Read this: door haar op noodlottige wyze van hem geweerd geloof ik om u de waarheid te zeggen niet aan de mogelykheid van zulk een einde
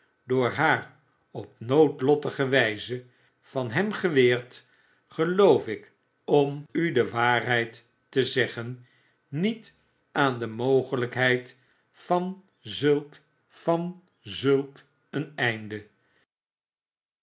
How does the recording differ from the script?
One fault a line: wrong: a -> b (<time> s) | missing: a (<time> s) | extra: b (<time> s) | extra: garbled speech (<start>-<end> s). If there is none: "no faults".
extra: van zulk (13.5 s)